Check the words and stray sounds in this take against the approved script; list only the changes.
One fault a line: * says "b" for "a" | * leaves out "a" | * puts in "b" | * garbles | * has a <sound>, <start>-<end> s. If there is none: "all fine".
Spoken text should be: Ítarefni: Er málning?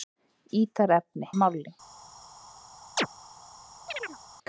* has a chirp, 3.0-3.1 s
* has a chirp, 3.9-4.2 s